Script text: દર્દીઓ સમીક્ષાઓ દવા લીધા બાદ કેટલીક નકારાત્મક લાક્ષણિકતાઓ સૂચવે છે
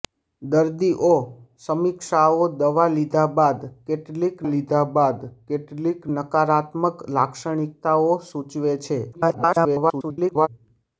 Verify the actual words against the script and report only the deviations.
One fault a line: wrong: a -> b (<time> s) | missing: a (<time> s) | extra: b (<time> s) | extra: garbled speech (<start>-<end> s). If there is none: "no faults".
extra: લીધા બાદ કેટલીક (4.5 s)
extra: garbled speech (9.1-10.5 s)